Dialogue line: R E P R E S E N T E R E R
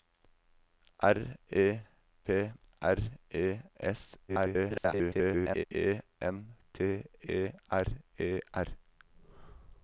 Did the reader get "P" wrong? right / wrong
right